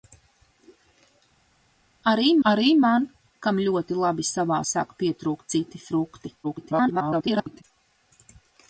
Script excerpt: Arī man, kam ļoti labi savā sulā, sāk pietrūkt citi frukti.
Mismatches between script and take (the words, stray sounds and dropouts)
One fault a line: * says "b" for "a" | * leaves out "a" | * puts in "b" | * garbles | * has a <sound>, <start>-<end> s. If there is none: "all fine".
* puts in "arī"
* leaves out "sulā"
* garbles